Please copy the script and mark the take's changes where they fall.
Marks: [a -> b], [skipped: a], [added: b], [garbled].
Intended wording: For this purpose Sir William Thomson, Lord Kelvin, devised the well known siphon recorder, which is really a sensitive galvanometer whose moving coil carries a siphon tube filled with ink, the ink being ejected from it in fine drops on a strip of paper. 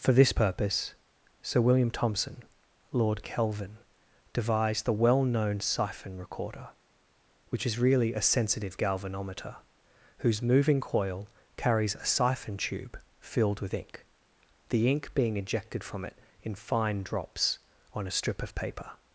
For this purpose Sir William Thomson, Lord Kelvin, devised the well known siphon recorder, which is really a sensitive galvanometer whose moving coil carries a siphon tube filled with ink, the ink being ejected from it in fine drops on a strip of paper.